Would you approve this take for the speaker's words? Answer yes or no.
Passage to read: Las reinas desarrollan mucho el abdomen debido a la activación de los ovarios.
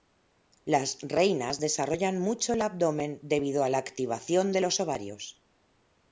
yes